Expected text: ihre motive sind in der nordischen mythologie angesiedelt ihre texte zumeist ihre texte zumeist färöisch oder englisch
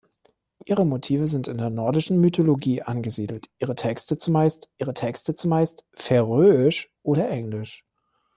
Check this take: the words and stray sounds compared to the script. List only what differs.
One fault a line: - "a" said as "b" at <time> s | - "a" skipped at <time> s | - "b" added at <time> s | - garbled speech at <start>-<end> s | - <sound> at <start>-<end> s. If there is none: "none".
none